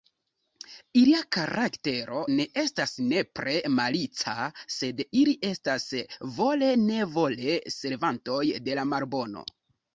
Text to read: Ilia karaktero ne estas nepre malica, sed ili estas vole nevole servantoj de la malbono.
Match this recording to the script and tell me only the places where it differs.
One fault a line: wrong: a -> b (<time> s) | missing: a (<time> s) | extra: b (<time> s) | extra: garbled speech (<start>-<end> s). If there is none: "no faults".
no faults